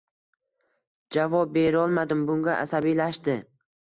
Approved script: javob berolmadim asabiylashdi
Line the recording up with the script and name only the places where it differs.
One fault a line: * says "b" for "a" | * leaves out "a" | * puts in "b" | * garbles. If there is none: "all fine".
* puts in "bunga"